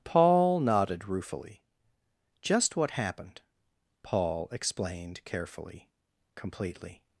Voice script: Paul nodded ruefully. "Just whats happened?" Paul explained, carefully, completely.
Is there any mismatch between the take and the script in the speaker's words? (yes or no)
yes